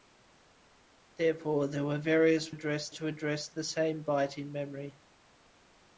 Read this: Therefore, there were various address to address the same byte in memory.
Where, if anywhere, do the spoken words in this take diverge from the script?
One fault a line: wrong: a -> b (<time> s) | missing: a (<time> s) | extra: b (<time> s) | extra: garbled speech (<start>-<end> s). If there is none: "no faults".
no faults